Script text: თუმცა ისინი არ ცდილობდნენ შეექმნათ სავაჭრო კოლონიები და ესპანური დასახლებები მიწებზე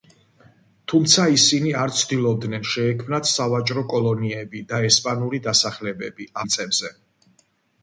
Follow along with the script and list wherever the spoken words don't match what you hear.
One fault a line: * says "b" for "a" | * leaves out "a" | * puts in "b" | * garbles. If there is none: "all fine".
all fine